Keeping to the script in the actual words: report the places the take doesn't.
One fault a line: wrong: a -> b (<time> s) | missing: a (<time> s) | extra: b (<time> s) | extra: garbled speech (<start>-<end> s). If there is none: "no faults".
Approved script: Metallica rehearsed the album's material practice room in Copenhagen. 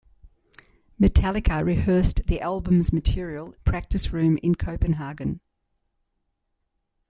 no faults